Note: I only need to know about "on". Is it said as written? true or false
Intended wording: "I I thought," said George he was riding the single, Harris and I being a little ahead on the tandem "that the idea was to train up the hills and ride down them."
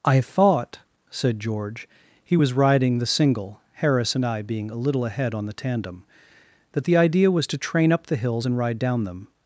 true